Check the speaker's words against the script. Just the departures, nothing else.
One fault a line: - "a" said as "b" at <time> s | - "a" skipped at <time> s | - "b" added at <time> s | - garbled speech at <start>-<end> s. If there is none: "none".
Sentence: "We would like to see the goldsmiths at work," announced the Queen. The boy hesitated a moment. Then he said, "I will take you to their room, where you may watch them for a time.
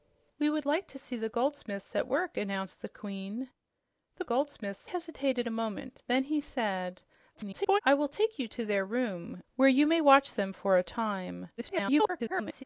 - "boy" said as "goldsmiths" at 4.2 s
- garbled speech at 7.3-7.8 s
- garbled speech at 11.6-12.6 s